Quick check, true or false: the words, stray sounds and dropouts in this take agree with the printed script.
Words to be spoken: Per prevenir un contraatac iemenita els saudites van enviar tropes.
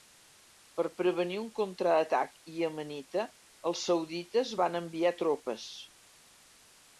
true